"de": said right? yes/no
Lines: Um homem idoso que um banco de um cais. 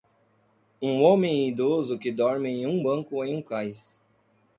no